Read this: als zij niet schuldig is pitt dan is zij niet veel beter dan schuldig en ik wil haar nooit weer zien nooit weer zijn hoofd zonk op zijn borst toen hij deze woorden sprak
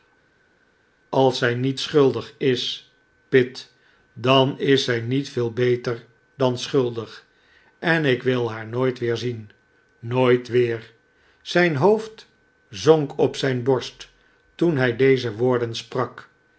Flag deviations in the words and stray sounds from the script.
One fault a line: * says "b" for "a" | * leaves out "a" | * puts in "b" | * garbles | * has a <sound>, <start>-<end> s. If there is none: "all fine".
all fine